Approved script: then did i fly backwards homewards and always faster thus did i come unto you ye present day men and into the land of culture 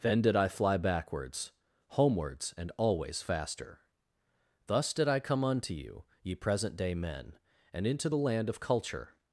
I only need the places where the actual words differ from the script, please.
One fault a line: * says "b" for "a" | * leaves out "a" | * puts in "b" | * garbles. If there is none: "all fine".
all fine